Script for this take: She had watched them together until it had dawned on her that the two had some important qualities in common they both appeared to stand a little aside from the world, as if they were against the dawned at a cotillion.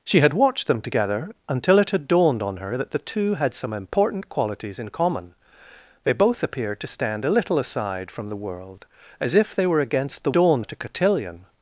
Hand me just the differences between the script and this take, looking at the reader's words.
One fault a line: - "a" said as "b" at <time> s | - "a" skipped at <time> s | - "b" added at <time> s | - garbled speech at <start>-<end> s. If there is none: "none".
none